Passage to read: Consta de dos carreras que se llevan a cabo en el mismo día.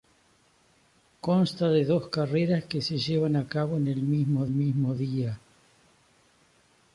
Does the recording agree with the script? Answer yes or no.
no